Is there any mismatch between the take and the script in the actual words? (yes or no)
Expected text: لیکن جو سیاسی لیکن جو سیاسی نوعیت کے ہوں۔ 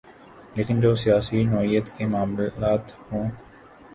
yes